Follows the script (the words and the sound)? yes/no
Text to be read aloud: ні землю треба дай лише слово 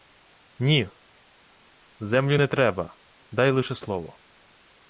no